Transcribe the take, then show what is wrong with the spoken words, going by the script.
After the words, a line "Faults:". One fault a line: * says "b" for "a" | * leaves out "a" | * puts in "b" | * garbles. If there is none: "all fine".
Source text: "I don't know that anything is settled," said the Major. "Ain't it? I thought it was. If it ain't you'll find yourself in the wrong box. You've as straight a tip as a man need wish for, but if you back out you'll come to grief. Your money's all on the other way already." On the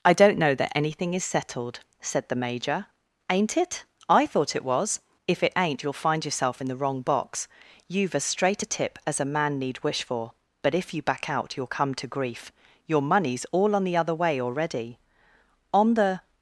"I don't know that anything is settled," said the Major. "Ain't it? I thought it was. If it ain't you'll find yourself in the wrong box. You've as straight a tip as a man need wish for, but if you back out you'll come to grief. Your money's all on the other way already." On the
Faults:
all fine